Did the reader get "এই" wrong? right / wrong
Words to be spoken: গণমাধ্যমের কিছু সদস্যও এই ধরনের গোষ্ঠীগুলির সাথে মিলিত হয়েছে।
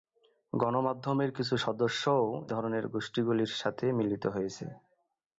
wrong